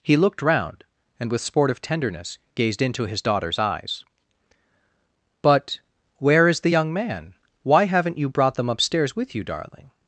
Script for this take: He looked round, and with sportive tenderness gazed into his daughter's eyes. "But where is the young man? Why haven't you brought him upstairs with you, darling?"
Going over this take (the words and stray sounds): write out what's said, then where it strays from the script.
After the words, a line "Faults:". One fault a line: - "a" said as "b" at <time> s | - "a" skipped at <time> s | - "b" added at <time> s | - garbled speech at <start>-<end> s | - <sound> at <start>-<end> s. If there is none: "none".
He looked round, and with sportive tenderness gazed into his daughter's eyes. "But where is the young man? Why haven't you brought them upstairs with you, darling?"
Faults:
- "him" said as "them" at 8.5 s